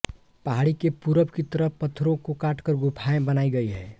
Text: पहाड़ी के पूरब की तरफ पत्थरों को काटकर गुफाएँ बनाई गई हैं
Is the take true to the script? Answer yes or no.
yes